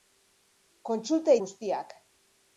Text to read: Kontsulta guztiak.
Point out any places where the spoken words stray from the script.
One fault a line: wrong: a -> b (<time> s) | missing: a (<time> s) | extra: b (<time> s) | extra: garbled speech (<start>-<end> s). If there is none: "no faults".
no faults